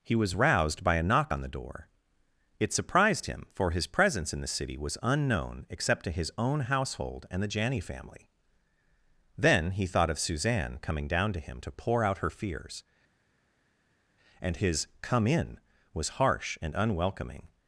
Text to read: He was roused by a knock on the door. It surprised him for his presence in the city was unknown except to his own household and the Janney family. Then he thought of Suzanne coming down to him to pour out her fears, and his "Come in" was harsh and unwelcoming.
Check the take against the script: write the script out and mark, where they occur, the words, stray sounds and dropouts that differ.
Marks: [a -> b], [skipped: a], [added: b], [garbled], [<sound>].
He was roused by a knock on the door. It surprised him for his presence in the city was unknown except to his own household and the Janney family. Then he thought of Suzanne coming down to him to pour out her fears, and his "Come in" was harsh and unwelcoming.